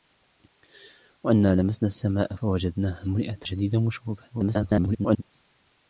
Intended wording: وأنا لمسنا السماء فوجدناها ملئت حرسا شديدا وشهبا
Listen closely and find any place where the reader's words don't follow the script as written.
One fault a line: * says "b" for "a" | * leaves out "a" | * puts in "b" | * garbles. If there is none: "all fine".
* leaves out "حرسا"
* garbles